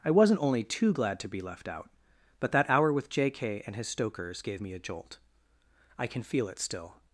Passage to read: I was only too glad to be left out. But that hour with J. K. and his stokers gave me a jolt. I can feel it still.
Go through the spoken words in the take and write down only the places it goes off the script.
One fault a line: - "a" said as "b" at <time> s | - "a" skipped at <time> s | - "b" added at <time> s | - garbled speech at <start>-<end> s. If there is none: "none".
- "was" said as "wasn't" at 0.1 s